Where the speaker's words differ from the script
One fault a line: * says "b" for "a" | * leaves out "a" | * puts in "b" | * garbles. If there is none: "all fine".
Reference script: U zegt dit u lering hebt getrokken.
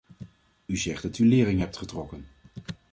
* says "dat" for "dit"